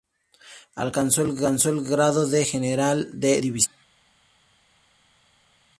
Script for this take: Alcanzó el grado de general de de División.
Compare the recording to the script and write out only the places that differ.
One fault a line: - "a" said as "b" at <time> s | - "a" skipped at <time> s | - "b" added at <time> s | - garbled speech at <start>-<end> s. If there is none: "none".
- "de" skipped at 3.4 s